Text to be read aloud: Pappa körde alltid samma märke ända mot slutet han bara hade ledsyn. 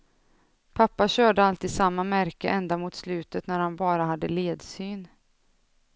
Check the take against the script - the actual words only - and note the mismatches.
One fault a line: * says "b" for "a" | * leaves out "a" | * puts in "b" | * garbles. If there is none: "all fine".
* puts in "när"